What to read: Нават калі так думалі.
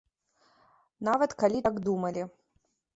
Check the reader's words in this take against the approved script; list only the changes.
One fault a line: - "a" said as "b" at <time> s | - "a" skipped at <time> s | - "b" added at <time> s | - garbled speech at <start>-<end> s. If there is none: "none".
none